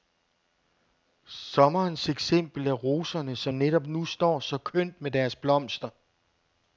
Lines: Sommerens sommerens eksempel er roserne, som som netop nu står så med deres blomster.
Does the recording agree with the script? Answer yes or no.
no